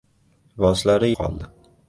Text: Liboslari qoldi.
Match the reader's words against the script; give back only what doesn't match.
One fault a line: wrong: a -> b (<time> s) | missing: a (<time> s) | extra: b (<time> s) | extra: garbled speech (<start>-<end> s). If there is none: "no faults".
no faults